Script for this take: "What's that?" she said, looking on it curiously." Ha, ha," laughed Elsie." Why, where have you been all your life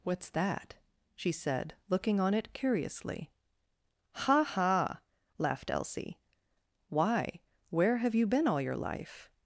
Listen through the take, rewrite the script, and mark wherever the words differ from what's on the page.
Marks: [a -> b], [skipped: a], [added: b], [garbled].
"What's that?" she said, looking on it curiously." Ha, ha," laughed Elsie." Why, where have you been all your life